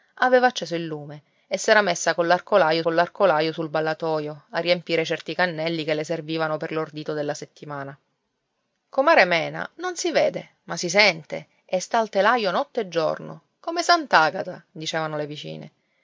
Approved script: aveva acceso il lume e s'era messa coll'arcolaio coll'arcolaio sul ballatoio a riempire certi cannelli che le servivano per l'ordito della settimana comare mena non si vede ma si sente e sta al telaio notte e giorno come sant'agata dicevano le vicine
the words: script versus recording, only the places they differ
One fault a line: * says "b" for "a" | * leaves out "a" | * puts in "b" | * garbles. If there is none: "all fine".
all fine